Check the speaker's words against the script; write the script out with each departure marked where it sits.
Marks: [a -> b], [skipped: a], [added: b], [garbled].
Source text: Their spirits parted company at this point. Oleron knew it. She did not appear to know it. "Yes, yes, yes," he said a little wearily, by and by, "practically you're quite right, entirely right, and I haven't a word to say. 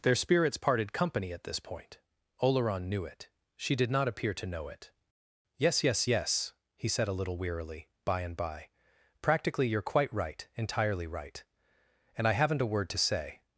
Their spirits parted company at this point. Oleron knew it. She did not appear to know it. "Yes, yes, yes," he said a little wearily, by and by, "practically you're quite right, entirely right, and I haven't a word to say.